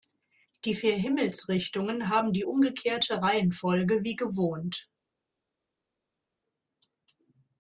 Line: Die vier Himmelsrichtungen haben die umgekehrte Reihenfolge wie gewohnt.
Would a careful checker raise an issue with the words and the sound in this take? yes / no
no